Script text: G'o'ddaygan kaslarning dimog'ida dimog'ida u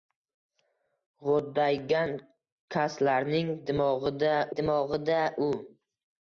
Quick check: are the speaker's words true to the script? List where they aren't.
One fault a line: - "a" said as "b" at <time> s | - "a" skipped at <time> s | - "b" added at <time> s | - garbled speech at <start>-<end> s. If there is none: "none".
none